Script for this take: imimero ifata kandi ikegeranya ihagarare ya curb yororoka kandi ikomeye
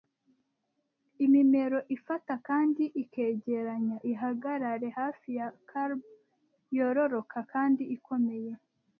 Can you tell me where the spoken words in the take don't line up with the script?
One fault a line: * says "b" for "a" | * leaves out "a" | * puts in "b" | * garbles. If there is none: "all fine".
* puts in "hafi"